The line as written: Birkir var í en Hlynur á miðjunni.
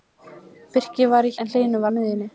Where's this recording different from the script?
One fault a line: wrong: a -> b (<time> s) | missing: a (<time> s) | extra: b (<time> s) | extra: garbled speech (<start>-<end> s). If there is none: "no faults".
no faults